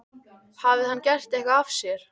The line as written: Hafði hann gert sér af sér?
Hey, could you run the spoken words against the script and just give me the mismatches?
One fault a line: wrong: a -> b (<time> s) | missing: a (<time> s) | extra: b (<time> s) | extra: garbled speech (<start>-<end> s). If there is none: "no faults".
wrong: sér -> eitthvað (1.4 s)